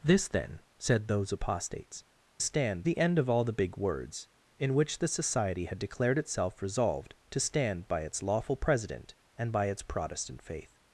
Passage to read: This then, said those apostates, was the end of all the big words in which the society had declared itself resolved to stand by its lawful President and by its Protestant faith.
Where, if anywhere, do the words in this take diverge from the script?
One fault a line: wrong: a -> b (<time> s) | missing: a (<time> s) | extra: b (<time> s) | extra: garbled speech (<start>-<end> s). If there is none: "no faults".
wrong: was -> stand (2.4 s)